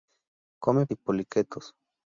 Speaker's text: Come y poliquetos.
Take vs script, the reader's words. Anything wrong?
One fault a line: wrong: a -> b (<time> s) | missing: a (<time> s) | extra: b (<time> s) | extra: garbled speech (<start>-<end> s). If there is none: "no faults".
no faults